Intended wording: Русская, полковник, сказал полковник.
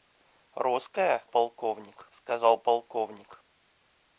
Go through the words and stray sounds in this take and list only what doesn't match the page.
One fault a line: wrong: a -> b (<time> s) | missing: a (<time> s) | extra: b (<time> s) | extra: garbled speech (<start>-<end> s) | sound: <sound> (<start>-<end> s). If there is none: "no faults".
no faults